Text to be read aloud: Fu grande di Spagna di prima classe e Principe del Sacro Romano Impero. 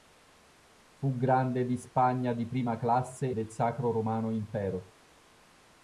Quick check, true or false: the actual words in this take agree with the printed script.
false